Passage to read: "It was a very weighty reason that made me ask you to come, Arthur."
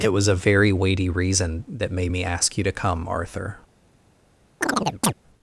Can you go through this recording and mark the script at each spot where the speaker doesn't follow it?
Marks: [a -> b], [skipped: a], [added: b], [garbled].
"It was a very weighty reason that made me ask you to come, Arthur."